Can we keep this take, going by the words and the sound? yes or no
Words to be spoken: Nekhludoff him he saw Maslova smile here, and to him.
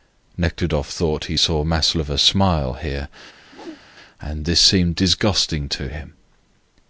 no